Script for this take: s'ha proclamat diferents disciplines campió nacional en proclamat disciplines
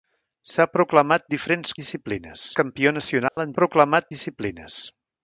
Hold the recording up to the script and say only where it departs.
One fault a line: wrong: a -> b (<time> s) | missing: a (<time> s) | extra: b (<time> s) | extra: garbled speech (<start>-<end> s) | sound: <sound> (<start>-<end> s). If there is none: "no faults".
sound: dropout (3.3-3.4 s)